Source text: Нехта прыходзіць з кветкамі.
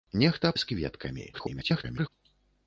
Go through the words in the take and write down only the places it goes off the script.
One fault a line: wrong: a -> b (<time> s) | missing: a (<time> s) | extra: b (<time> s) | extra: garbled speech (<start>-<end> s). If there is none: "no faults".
missing: прыходзіць (0.5 s)
extra: garbled speech (1.3-2.1 s)